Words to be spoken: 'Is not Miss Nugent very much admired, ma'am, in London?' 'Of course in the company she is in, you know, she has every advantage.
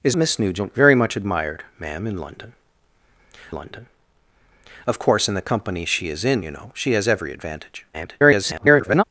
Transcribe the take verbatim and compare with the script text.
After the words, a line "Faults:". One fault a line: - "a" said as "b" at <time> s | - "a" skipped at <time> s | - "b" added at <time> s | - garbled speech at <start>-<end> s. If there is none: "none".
'Is Miss Nugent very much admired, ma'am, in London London?' 'Of course in the company she is in, you know, she has every advantage. [garbled]
Faults:
- "not" skipped at 0.1 s
- "London" added at 3.5 s
- garbled speech at 7.9-9.0 s